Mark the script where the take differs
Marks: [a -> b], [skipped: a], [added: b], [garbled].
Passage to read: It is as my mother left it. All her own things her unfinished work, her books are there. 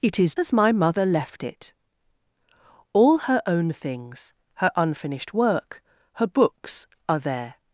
It is as my mother left it. All her own things her unfinished work, her books are there.